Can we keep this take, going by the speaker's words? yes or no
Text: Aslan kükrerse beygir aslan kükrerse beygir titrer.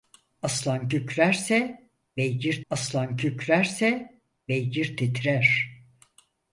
yes